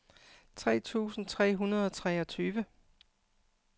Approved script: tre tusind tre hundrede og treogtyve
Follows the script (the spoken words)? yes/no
yes